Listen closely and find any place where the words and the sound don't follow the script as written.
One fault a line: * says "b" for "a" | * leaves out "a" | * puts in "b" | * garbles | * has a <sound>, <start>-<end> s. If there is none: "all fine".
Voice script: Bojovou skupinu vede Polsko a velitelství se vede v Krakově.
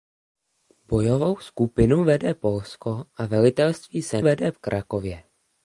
all fine